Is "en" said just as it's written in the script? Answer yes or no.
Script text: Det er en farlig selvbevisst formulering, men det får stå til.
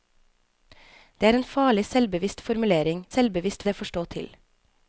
yes